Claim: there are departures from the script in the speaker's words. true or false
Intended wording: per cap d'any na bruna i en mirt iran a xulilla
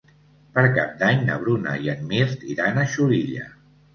false